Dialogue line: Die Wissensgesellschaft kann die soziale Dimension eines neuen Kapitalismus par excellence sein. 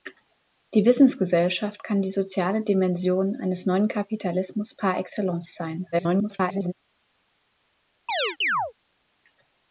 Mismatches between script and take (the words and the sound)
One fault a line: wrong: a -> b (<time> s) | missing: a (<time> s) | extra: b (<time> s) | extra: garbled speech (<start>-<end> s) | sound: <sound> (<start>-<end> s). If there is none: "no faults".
extra: garbled speech (5.9-6.7 s)
sound: chirp (8.1-8.7 s)